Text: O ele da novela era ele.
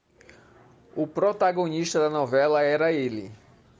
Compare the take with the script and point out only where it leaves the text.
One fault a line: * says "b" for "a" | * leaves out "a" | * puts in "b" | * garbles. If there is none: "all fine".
* says "protagonista" for "ele"